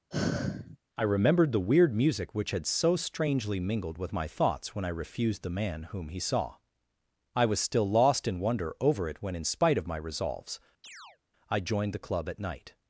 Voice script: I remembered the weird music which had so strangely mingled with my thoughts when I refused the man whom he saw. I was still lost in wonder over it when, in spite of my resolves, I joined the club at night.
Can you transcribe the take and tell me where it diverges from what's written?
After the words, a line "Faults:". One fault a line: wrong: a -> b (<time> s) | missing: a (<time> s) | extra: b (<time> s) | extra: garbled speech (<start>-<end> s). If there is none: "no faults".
I remembered the weird music which had so strangely mingled with my thoughts when I refused the man whom he saw. I was still lost in wonder over it when, in spite of my resolves, I joined the club at night.
Faults:
no faults